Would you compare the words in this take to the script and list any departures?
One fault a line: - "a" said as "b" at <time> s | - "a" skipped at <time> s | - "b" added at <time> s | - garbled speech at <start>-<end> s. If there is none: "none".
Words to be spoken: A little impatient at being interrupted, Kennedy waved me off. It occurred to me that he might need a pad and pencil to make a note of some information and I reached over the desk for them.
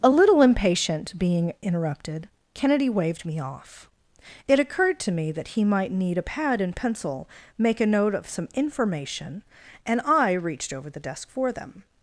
- "at" skipped at 1.2 s
- "to" skipped at 7.3 s